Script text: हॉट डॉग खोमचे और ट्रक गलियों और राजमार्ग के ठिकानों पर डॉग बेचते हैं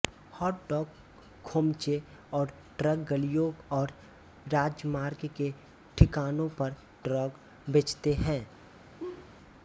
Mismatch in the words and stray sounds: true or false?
true